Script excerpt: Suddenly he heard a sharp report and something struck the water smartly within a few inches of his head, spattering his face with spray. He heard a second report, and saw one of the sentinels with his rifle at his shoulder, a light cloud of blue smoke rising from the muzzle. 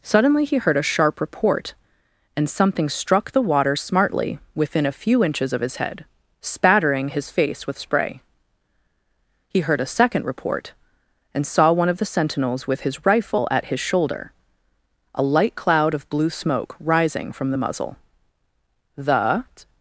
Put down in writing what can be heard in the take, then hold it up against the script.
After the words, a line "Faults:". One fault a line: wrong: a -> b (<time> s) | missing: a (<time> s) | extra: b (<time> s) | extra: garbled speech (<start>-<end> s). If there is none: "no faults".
Suddenly he heard a sharp report and something struck the water smartly within a few inches of his head, spattering his face with spray. He heard a second report, and saw one of the sentinels with his rifle at his shoulder, a light cloud of blue smoke rising from the muzzle. The
Faults:
extra: The (19.0 s)